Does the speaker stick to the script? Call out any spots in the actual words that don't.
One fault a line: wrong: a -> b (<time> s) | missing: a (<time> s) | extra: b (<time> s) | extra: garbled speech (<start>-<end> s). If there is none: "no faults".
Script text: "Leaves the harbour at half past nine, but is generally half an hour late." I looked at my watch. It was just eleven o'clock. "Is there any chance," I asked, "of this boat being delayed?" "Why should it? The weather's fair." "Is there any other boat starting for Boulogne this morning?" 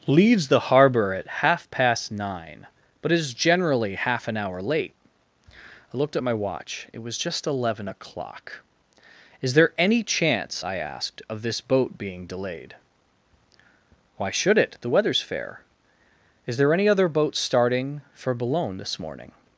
no faults